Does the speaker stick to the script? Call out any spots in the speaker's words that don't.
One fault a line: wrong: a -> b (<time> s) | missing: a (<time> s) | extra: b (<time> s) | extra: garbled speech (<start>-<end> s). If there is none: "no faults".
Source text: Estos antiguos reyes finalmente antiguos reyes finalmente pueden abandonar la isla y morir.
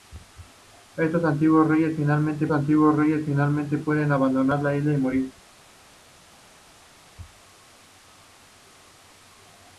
no faults